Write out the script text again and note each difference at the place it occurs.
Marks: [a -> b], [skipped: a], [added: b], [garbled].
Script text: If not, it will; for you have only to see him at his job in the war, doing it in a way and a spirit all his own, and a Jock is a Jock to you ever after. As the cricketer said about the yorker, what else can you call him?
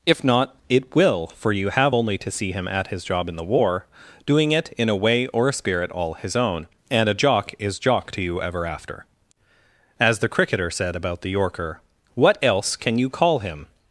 If not, it will; for you have only to see him at his job in the war, doing it in a way [and -> or] a spirit all his own, and a Jock is [skipped: a] Jock to you ever after. As the cricketer said about the yorker, what else can you call him?